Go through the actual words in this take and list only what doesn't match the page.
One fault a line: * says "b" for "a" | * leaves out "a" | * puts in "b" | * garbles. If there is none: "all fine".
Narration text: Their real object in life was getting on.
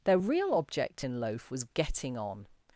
* says "loaf" for "life"